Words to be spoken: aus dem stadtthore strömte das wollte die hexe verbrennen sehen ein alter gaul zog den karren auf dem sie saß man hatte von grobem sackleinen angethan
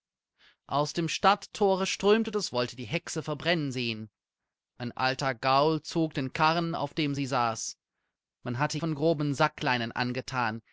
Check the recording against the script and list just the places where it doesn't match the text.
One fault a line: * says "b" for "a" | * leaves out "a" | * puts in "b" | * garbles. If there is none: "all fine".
all fine